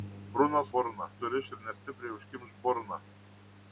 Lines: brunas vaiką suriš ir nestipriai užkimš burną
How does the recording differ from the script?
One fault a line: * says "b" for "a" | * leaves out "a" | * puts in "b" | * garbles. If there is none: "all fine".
* says "burną" for "vaiką"